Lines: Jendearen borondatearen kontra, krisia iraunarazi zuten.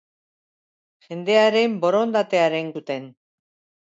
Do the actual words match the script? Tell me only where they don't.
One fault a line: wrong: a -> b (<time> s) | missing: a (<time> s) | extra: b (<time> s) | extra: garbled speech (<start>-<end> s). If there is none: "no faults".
missing: kontra krisia iraunarazi (2.7 s)